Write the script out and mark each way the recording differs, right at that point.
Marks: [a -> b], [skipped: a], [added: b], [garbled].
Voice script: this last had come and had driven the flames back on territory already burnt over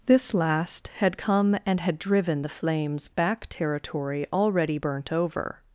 this last had come and had driven the flames back [skipped: on] territory already burnt over